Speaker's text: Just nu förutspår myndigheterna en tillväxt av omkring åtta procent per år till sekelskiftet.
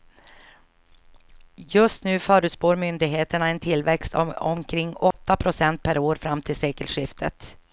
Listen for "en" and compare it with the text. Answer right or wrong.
right